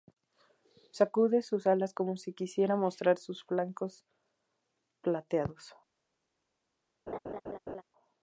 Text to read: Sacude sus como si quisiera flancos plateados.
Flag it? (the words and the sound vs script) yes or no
yes